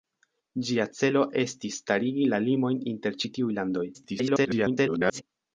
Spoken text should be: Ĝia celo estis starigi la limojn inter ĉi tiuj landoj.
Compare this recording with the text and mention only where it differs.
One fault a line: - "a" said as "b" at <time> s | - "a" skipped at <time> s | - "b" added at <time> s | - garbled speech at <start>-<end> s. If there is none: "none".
- garbled speech at 3.9-5.2 s